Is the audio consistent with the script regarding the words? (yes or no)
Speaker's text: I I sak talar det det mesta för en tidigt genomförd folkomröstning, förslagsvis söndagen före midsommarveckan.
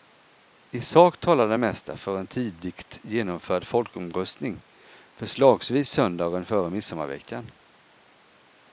no